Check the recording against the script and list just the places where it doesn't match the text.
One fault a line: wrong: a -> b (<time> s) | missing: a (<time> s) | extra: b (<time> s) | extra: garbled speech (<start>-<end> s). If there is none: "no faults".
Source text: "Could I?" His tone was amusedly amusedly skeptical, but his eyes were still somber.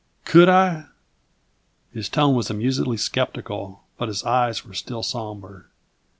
missing: amusedly (3.0 s)